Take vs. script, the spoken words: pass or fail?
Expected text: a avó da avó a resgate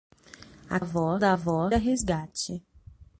pass